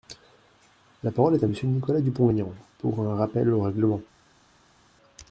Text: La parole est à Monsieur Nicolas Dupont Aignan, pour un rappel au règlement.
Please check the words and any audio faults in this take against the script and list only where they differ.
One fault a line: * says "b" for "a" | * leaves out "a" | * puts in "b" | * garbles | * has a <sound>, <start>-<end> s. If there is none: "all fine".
all fine